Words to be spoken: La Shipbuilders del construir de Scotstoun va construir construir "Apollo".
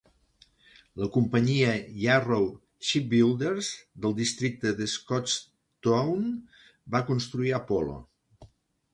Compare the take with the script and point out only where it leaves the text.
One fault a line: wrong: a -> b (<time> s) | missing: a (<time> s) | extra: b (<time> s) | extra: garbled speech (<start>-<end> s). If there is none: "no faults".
extra: companyia Yarrow (1.1 s)
wrong: construir -> districte (4.2 s)
missing: construir (7.5 s)